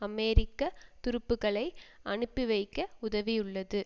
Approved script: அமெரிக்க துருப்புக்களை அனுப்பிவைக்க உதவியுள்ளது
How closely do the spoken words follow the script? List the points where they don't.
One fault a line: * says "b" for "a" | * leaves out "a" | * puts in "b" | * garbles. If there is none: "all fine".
all fine